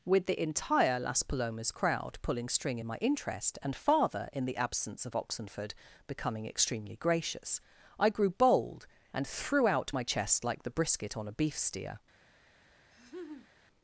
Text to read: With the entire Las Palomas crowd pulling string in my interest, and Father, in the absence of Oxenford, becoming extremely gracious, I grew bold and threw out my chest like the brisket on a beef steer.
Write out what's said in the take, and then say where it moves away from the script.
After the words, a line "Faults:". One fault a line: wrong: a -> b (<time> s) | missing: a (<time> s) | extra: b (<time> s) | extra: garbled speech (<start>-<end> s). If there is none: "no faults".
With the entire Las Palomas crowd pulling string in my interest, and Father, in the absence of Oxenford, becoming extremely gracious, I grew bold and threw out my chest like the brisket on a beef steer.
Faults:
no faults